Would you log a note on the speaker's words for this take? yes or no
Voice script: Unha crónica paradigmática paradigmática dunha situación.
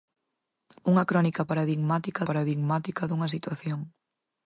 no